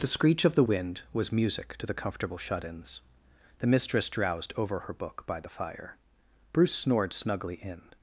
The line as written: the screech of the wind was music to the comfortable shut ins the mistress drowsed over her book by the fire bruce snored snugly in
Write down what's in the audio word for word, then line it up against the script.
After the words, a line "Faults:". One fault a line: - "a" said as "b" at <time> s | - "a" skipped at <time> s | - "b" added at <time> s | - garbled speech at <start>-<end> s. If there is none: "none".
the screech of the wind was music to the comfortable shut ins the mistress drowsed over her book by the fire bruce snored snugly in
Faults:
none